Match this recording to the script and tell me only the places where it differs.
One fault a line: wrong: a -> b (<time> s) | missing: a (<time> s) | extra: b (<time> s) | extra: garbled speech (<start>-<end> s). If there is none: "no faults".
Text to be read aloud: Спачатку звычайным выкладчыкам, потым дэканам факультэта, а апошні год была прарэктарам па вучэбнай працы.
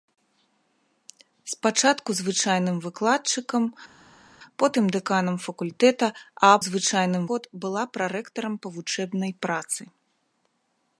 wrong: апошні -> звычайным (6.7 s)